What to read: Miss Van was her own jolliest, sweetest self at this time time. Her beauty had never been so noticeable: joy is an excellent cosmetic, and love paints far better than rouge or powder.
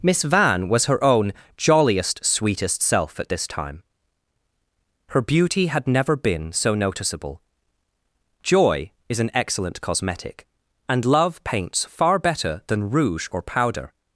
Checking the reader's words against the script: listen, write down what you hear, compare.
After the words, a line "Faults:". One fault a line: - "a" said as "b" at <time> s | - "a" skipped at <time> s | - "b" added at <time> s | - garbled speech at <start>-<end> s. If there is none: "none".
Miss Van was her own jolliest, sweetest self at this time. Her beauty had never been so noticeable: joy is an excellent cosmetic, and love paints far better than rouge or powder.
Faults:
- "time" skipped at 3.8 s